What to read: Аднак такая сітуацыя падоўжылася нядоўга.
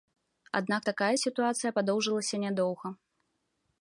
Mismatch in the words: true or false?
false